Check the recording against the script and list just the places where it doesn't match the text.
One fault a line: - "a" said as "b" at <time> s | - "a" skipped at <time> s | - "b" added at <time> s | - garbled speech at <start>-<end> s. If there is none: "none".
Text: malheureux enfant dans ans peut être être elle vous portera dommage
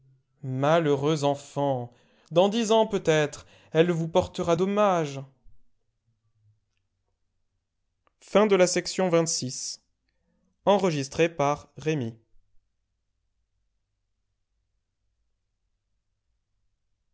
- "dix" added at 2.5 s
- "être" skipped at 3.5 s